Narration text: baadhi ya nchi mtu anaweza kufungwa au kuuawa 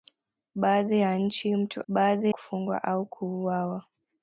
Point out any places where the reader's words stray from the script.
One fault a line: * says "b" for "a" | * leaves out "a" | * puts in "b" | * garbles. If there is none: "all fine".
* says "baadhi" for "anaweza"